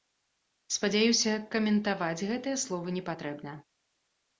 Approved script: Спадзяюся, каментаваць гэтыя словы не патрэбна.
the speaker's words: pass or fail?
pass